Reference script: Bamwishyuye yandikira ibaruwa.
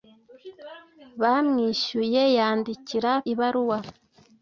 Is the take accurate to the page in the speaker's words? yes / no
yes